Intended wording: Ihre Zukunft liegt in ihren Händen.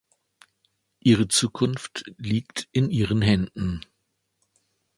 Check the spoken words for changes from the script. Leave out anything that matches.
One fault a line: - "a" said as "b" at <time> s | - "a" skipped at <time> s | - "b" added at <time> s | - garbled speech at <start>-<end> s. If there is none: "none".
none